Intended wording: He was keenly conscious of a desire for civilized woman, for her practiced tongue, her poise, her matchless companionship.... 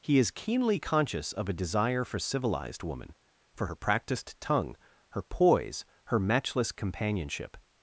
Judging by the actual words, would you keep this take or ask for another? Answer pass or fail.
fail